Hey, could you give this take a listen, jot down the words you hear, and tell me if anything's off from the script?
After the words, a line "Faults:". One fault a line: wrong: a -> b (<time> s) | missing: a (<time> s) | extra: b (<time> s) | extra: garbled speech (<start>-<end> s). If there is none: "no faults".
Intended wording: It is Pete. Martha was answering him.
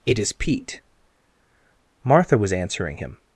It is Pete. Martha was answering him.
Faults:
no faults